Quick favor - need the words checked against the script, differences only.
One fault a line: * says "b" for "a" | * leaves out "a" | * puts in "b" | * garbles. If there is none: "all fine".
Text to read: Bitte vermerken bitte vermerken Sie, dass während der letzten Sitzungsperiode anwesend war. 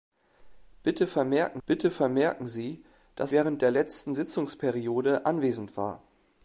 all fine